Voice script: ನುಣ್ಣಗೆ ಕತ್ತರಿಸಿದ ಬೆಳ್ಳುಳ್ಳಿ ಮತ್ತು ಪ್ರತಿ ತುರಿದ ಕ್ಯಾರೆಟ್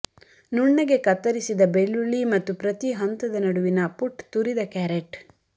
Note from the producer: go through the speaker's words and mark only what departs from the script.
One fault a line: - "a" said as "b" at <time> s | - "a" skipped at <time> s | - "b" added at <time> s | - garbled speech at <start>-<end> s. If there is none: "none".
- "ಹಂತದ ನಡುವಿನ ಪುಟ್" added at 2.9 s